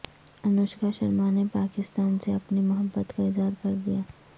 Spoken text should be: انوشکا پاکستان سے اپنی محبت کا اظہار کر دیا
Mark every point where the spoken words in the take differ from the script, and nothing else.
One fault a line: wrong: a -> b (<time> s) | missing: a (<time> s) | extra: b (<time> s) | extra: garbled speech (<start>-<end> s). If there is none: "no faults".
extra: شرما نے (0.9 s)